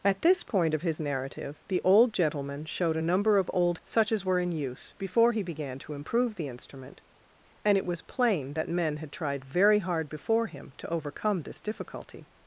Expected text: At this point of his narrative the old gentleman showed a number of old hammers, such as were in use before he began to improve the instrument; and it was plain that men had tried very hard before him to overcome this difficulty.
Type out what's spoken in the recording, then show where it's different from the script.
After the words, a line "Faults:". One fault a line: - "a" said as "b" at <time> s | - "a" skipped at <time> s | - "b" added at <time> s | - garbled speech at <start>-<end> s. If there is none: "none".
At this point of his narrative the old gentleman showed a number of old such as were in use before he began to improve the instrument; and it was plain that men had tried very hard before him to overcome this difficulty.
Faults:
- "hammers" skipped at 3.8 s